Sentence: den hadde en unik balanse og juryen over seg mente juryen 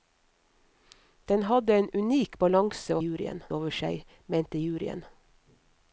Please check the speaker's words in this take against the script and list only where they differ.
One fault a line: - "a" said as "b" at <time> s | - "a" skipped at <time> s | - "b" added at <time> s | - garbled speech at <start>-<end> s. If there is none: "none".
none